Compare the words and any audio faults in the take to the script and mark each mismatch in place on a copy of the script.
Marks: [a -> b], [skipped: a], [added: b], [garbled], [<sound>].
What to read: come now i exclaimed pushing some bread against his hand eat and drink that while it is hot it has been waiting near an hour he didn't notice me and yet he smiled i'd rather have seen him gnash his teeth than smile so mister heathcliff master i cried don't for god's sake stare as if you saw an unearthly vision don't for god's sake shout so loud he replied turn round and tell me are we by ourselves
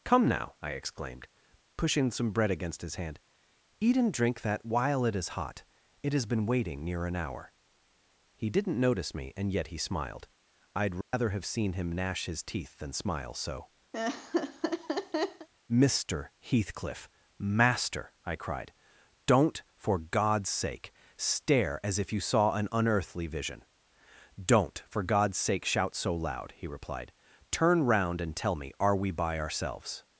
come now i exclaimed pushing some bread against his hand eat and drink that while it is hot it has been waiting near an hour he didn't notice me and yet he smiled i'd rather [dropout] have seen him gnash his teeth than smile so [laugh] mister heathcliff master i cried don't for god's sake stare as if you saw an unearthly vision don't for god's sake shout so loud he replied turn round and tell me are we by ourselves